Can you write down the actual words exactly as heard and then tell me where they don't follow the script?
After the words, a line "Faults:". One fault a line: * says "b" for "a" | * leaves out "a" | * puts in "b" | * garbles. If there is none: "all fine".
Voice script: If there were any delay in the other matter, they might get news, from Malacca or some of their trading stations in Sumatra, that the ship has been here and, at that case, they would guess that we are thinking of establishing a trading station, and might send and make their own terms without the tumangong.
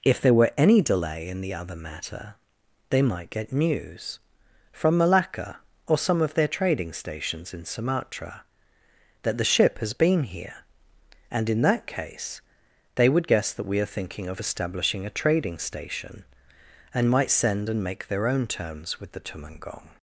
If there were any delay in the other matter, they might get news, from Malacca or some of their trading stations in Sumatra, that the ship has been here and, in that case, they would guess that we are thinking of establishing a trading station, and might send and make their own terms with the tumangong.
Faults:
* says "in" for "at"
* says "with" for "without"